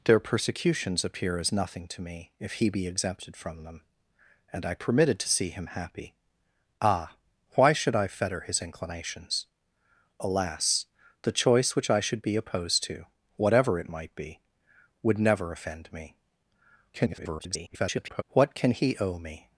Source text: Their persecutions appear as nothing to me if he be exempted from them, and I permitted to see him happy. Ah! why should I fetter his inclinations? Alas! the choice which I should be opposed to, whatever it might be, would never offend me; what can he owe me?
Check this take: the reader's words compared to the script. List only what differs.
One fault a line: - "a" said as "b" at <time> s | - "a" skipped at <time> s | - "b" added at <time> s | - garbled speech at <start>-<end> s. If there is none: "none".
- garbled speech at 16.9-18.2 s